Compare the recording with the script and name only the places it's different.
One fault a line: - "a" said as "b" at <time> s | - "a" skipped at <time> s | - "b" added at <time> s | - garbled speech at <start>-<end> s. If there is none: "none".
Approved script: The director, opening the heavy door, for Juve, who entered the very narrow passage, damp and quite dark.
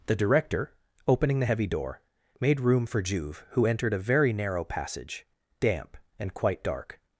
- "made room" added at 2.4 s
- "the" said as "a" at 3.9 s